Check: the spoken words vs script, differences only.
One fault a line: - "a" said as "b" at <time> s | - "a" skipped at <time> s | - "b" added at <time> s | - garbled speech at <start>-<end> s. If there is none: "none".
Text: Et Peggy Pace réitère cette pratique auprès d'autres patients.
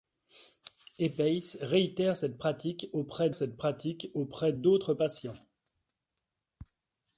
- "Peggy" skipped at 1.1 s
- "cette pratique auprès" added at 3.3 s